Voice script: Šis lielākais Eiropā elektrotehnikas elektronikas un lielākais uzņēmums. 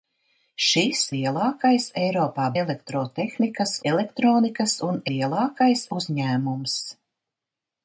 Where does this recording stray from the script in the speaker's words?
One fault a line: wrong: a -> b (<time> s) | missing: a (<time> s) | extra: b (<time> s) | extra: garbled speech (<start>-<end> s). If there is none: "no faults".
no faults